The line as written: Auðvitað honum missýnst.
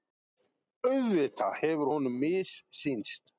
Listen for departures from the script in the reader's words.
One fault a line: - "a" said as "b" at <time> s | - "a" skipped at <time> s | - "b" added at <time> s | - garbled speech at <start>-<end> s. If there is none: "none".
- "hefur" added at 1.6 s